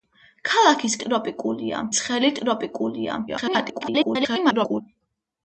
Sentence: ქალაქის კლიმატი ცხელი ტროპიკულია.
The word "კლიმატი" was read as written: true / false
false